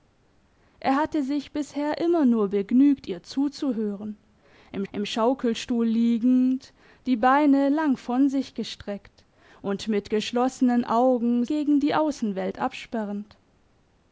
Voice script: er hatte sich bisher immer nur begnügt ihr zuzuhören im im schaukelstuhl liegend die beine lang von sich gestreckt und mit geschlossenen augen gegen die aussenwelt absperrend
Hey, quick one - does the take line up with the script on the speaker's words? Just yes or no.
yes